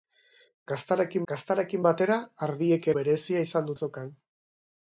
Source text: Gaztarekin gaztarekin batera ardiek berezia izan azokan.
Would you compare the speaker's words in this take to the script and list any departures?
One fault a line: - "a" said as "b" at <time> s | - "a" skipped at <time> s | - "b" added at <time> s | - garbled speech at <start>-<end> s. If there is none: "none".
none